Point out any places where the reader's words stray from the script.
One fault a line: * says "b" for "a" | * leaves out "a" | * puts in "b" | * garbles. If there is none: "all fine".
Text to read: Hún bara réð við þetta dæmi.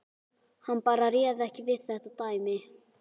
* says "Hann" for "Hún"
* puts in "ekki"